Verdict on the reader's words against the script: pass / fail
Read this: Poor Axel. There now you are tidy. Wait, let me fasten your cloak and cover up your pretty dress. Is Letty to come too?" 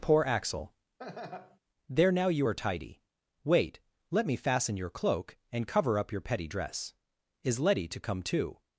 fail